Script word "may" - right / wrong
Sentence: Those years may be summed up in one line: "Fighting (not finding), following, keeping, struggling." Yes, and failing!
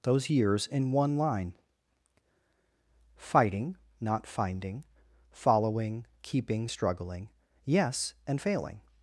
wrong